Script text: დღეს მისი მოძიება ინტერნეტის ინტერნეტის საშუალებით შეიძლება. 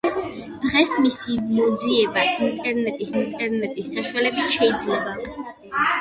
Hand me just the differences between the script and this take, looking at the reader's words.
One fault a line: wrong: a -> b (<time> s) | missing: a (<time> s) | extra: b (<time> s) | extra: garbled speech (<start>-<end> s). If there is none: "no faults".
no faults